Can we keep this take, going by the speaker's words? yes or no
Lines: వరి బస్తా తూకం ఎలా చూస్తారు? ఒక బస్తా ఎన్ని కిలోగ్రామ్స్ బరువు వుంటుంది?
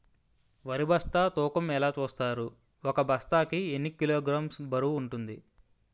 no